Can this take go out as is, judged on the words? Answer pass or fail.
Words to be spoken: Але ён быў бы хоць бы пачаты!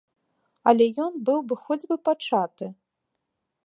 pass